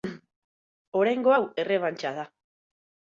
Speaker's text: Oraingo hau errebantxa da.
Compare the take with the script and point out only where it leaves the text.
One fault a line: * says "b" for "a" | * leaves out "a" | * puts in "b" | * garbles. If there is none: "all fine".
all fine